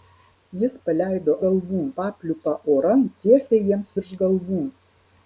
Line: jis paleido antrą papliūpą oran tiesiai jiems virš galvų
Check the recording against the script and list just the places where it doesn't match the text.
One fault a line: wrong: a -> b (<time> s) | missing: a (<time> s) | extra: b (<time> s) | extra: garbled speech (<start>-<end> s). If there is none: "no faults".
wrong: antrą -> galvų (1.5 s)